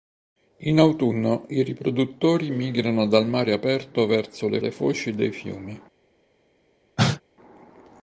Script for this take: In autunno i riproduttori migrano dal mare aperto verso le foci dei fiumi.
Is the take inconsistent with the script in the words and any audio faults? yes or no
yes